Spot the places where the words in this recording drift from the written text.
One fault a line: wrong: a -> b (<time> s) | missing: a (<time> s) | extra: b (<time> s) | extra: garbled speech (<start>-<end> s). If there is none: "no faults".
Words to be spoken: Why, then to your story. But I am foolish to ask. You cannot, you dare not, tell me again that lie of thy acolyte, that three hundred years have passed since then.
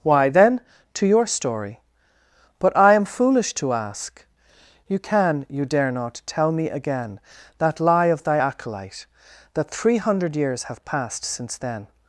wrong: cannot -> can (5.0 s)